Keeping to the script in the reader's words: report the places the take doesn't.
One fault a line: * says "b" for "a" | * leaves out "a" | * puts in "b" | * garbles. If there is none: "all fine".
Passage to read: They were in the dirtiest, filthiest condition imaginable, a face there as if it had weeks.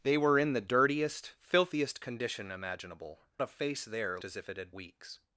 all fine